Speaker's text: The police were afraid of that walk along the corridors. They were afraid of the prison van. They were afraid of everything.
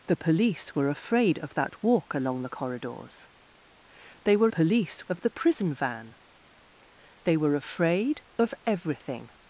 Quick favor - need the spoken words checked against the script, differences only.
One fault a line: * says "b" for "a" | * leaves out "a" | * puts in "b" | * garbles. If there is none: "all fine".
* says "police" for "afraid"